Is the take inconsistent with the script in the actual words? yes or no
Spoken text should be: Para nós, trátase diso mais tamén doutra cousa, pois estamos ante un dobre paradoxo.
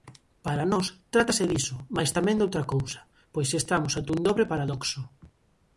no